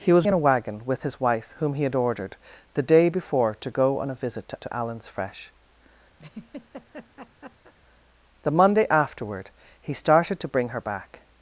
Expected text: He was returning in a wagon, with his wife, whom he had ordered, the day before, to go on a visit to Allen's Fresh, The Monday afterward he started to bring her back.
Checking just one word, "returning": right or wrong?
wrong